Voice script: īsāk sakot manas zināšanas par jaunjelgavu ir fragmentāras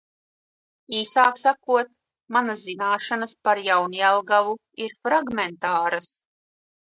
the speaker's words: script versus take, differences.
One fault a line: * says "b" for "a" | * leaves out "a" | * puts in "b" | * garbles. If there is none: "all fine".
all fine